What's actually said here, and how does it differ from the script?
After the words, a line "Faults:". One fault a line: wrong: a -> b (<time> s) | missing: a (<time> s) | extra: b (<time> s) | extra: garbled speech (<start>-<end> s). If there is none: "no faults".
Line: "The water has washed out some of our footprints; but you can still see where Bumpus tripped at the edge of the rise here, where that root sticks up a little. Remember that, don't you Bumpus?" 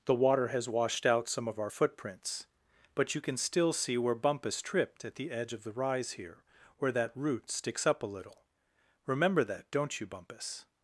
"The water has washed out some of our footprints; but you can still see where Bumpus tripped at the edge of the rise here, where that root sticks up a little. Remember that, don't you Bumpus?"
Faults:
no faults